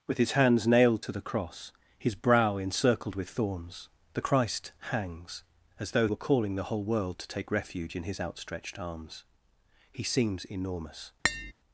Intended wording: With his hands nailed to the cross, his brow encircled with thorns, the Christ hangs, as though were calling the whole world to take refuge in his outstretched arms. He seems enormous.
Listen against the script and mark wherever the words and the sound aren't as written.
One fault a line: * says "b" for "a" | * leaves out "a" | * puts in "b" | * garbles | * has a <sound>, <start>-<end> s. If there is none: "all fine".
* has a tap, 11.2-11.5 s